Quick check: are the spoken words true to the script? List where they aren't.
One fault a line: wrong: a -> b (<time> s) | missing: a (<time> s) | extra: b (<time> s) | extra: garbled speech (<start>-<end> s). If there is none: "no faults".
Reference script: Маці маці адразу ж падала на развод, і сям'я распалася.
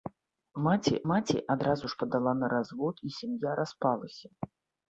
no faults